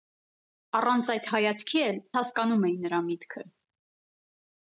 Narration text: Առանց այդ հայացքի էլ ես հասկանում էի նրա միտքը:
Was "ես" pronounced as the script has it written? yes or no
no